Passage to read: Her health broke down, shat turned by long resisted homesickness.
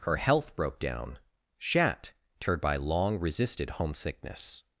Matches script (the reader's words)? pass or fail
pass